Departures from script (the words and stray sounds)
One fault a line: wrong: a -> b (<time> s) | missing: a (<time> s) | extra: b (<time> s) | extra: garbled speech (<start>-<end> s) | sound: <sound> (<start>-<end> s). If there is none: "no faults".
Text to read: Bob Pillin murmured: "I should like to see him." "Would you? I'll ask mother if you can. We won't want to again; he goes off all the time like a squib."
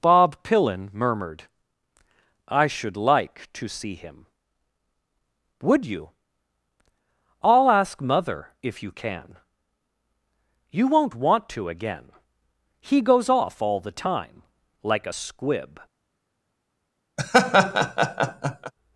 wrong: We -> You (10.7 s)
sound: laugh (17.2-18.7 s)